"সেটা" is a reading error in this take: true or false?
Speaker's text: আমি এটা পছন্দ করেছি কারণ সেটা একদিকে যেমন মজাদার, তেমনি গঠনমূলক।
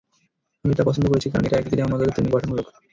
true